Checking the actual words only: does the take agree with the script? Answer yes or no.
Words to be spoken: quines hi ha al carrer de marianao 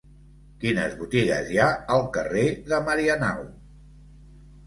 no